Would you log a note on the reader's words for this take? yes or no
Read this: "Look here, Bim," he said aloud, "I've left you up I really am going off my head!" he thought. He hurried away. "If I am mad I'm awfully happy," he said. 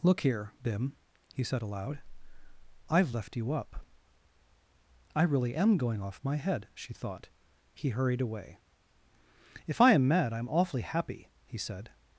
yes